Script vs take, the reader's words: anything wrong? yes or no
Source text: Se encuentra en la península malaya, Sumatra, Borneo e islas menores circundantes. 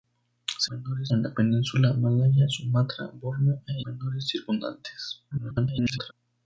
yes